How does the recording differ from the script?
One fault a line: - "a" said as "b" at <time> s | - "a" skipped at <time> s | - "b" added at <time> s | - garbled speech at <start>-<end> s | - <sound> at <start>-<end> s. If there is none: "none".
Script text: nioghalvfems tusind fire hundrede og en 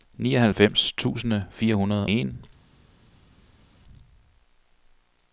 - "og" skipped at 2.1 s